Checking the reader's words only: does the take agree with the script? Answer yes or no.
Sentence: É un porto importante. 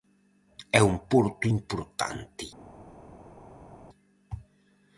yes